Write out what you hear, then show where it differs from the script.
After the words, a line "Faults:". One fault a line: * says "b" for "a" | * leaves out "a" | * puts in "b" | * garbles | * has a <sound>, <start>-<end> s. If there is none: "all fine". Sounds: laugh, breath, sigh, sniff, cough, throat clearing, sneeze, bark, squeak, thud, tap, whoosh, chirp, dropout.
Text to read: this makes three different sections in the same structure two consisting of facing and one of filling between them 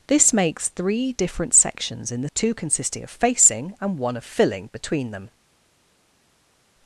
this makes three different sections in the two consisting of facing and one of filling between them
Faults:
* leaves out "same structure"